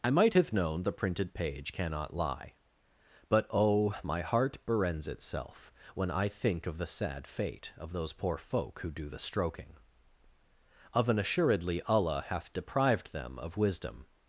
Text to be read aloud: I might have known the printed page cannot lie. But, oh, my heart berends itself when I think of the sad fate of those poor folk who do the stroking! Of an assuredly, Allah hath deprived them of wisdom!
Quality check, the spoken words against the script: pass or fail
pass